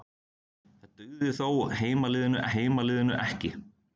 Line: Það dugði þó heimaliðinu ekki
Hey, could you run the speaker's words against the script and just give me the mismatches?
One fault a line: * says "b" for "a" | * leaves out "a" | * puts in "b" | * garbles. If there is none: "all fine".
* puts in "heimaliðinu"